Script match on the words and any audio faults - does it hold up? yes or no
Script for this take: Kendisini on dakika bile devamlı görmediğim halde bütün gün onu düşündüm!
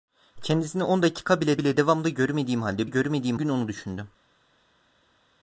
no